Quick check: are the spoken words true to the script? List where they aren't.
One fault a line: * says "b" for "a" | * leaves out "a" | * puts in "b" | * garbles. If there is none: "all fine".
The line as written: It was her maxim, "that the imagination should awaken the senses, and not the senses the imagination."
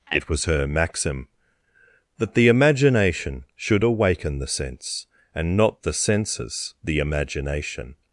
* says "sense" for "senses"